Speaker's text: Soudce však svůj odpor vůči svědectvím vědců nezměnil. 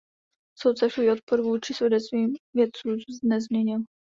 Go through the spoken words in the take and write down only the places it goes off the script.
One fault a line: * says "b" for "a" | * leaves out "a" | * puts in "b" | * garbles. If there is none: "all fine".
* leaves out "však"